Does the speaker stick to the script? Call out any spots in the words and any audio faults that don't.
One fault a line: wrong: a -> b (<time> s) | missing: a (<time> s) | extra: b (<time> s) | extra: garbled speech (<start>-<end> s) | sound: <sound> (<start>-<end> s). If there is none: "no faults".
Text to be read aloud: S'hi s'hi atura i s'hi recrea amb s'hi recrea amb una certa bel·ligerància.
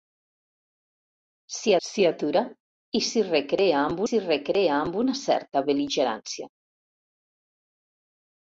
no faults